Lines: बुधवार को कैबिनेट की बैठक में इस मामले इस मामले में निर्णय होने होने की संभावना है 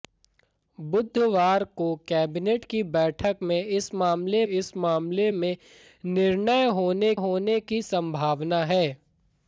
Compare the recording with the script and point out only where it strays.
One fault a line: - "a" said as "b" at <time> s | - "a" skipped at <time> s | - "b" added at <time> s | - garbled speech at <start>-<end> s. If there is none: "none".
none